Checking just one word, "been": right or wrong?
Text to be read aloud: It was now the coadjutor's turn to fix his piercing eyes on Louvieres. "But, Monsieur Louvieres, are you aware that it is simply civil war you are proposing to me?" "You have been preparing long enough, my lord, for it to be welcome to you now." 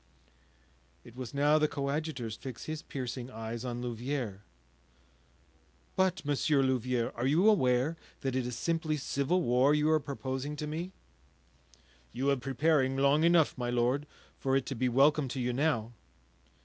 wrong